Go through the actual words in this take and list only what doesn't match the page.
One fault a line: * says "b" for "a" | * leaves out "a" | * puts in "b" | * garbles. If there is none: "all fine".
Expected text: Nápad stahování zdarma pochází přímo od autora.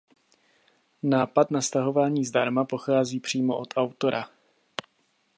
* puts in "na"